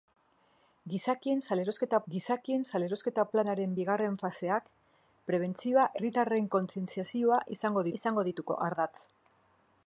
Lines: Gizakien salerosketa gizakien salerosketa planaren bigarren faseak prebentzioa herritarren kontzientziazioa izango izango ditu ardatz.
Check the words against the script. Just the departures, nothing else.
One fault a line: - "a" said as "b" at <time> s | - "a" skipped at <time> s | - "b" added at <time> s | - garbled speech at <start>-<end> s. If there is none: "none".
none